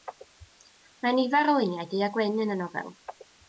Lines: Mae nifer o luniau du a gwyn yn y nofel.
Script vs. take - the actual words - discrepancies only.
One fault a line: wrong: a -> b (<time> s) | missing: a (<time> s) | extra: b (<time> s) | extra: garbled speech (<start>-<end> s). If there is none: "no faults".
no faults